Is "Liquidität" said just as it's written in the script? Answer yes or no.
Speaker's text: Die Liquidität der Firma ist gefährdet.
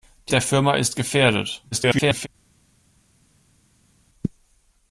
no